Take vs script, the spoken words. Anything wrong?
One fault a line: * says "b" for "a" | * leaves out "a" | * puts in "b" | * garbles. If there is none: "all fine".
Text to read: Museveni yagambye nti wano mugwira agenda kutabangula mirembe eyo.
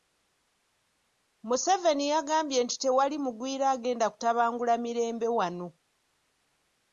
* says "tewali" for "wano"
* says "wano" for "eyo"